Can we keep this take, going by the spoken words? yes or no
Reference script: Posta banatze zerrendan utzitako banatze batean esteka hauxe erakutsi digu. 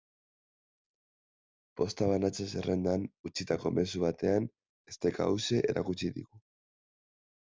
no